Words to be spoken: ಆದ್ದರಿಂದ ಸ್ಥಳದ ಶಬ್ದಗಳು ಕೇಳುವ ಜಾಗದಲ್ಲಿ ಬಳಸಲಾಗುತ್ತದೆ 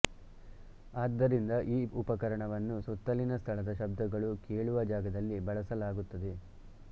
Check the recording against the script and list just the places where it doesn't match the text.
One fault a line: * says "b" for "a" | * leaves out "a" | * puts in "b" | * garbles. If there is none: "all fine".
* puts in "ಈ ಉಪಕರಣವನ್ನು ಸುತ್ತಲಿನ"